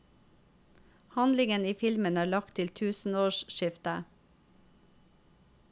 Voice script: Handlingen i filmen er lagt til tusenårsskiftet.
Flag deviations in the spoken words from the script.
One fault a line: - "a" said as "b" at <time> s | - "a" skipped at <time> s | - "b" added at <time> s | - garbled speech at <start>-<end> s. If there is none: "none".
none